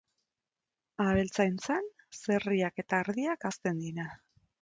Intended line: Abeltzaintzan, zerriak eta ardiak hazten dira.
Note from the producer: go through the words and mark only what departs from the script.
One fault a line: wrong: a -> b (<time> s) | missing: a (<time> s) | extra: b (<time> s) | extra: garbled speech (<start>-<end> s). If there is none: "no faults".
no faults